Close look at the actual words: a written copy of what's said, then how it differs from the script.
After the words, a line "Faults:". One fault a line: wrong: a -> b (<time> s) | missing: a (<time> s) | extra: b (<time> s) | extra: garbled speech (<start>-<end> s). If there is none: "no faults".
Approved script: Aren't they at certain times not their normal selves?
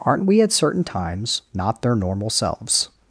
Aren't we at certain times not their normal selves?
Faults:
wrong: they -> we (0.2 s)